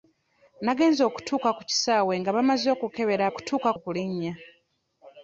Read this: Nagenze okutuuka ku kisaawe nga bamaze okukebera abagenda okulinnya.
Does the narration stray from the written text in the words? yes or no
yes